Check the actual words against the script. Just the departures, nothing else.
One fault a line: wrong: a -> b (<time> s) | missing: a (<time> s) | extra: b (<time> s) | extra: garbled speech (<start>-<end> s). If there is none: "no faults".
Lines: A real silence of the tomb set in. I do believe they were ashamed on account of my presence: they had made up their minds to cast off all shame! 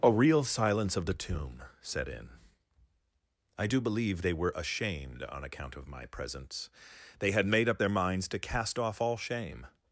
no faults